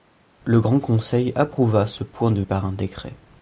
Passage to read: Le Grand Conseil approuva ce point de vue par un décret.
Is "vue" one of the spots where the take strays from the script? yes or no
yes